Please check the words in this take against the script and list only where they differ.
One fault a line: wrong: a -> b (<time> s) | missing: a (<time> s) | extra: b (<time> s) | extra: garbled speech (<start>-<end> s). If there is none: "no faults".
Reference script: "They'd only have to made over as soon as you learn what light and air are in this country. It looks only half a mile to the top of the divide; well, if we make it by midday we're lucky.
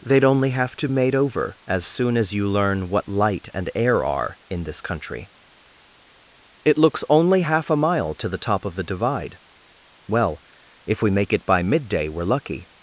no faults